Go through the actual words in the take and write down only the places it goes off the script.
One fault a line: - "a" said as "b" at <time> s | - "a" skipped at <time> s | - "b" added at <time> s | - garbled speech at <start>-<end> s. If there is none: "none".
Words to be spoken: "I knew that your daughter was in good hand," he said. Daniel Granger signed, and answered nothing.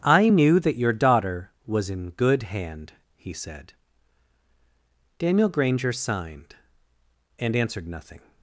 none